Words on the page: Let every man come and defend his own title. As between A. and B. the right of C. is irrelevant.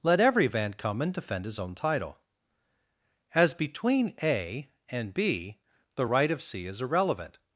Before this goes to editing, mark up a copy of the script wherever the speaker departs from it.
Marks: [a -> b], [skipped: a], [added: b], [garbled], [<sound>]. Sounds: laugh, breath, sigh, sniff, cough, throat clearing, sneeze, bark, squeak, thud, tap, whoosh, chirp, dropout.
Let every [man -> van] come and defend his own title. As between A. and B. the right of C. is irrelevant.